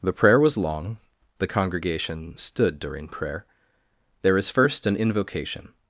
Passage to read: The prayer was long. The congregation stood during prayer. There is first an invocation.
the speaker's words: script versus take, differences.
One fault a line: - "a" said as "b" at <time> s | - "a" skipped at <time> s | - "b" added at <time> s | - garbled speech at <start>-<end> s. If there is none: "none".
none